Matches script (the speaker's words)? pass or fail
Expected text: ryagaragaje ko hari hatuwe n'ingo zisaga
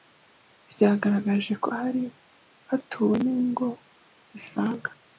pass